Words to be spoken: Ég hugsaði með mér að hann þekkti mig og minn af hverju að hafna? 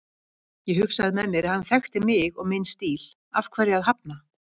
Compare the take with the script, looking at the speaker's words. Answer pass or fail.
fail